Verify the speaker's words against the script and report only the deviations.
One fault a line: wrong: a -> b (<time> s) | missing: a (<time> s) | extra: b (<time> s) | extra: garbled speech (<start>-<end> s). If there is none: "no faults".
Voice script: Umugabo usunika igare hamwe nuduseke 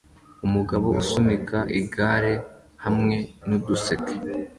no faults